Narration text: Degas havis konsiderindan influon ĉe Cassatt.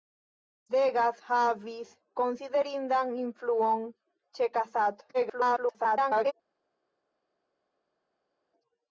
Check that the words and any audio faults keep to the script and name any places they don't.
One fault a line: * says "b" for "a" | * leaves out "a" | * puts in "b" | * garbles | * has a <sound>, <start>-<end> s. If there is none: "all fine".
* garbles